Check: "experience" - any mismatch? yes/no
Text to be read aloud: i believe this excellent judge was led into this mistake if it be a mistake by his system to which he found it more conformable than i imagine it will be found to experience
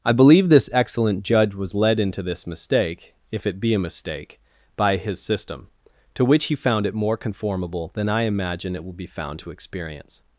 no